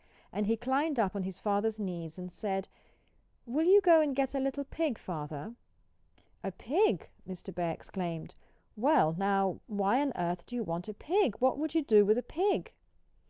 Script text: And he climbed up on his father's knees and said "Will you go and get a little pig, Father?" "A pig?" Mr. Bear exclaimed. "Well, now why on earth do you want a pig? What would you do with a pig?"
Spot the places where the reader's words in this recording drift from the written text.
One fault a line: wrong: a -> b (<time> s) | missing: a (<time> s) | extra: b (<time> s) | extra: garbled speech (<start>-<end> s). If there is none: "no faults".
no faults